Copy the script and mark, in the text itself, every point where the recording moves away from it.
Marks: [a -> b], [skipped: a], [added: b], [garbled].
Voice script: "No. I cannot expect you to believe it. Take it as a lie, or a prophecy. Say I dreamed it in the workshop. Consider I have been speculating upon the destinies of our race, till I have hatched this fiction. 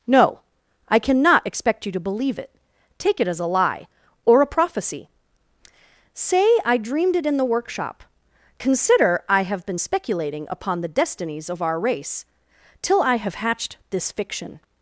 "No. I cannot expect you to believe it. Take it as a lie, or a prophecy. Say I dreamed it in the workshop. Consider I have been speculating upon the destinies of our race, till I have hatched this fiction.